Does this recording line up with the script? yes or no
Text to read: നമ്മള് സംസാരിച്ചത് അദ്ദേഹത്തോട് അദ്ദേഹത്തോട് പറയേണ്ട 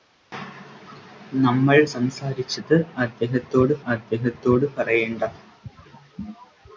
yes